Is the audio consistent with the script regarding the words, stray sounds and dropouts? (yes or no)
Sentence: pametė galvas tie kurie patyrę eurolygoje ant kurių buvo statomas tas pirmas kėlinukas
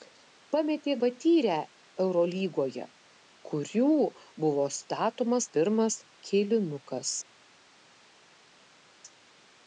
no